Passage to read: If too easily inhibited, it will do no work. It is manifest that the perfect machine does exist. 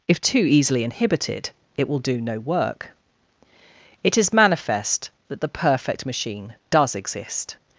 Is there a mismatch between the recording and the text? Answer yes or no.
no